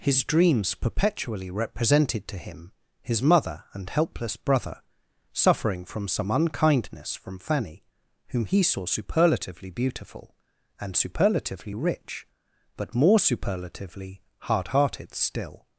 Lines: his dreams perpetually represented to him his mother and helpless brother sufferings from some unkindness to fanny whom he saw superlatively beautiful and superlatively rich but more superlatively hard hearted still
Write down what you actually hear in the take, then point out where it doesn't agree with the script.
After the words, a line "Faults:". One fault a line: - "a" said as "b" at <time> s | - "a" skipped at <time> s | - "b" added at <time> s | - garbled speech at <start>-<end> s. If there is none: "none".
his dreams perpetually represented to him his mother and helpless brother suffering from some unkindness from fanny whom he saw superlatively beautiful and superlatively rich but more superlatively hard hearted still
Faults:
- "sufferings" said as "suffering" at 5.3 s
- "to" said as "from" at 7.2 s